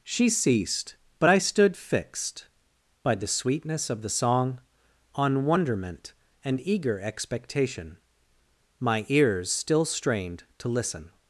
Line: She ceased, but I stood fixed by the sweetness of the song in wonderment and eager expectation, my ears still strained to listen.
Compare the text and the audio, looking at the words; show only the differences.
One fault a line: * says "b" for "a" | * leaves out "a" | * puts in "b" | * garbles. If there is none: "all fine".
* says "on" for "in"